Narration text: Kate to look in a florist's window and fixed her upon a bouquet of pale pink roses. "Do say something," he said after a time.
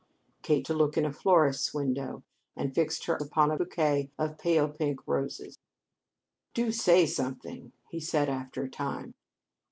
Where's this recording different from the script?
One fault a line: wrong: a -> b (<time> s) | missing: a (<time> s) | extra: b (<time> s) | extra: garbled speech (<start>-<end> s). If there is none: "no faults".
no faults